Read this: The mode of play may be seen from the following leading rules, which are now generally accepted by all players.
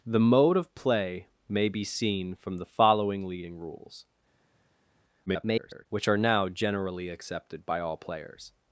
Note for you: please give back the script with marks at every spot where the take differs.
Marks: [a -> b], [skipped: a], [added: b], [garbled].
The mode of play may be seen from the following leading rules, [garbled] which are now generally accepted by all players.